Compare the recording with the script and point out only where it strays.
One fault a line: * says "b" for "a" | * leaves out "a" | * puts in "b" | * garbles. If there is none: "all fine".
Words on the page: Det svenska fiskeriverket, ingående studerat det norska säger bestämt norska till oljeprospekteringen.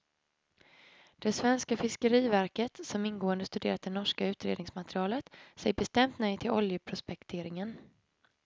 * puts in "som"
* puts in "utredningsmaterialet"
* says "nej" for "norska"